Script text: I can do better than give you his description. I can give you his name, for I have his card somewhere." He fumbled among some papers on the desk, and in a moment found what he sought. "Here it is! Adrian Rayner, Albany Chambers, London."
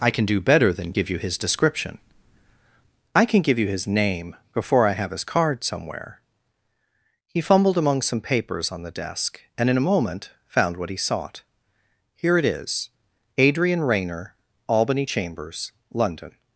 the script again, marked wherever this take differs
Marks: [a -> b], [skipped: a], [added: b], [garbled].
I can do better than give you his description. I can give you his name, [for -> before] I have his card somewhere." He fumbled among some papers on the desk, and in a moment found what he sought. "Here it is! Adrian Rayner, Albany Chambers, London."